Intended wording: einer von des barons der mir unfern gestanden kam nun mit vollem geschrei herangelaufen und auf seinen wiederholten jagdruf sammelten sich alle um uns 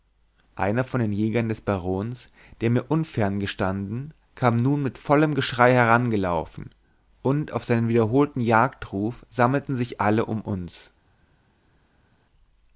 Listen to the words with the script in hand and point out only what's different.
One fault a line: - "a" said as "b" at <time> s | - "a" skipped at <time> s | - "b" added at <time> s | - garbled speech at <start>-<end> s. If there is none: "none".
- "den jägern" added at 1.0 s